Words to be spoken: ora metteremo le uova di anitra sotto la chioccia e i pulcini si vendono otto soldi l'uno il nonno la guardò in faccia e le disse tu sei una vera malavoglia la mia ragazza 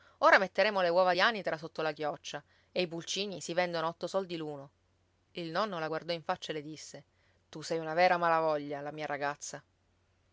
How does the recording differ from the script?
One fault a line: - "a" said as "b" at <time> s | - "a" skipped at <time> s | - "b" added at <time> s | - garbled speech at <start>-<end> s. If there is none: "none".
none